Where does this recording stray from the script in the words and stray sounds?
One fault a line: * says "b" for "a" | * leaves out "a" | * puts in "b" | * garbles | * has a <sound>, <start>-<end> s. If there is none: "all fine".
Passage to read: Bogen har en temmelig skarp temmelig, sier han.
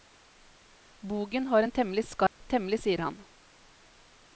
* has a dropout, 2.3-2.4 s